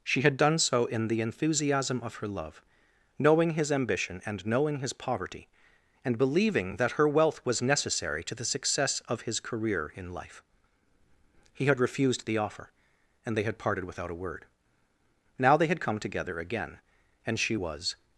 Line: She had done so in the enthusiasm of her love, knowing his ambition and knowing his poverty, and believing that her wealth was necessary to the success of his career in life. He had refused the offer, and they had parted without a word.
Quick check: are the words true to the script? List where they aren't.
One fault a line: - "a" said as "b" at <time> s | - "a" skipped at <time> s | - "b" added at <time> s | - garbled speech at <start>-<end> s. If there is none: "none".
- "Now they had come together again and she was" added at 15.4 s